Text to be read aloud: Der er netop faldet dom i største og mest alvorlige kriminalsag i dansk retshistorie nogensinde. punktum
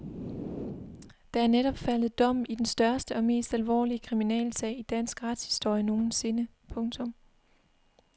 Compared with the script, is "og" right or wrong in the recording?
right